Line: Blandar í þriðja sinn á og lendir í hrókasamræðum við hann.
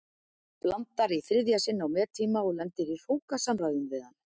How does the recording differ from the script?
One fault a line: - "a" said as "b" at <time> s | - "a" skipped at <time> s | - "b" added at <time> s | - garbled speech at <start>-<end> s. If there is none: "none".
- "mettíma" added at 2.0 s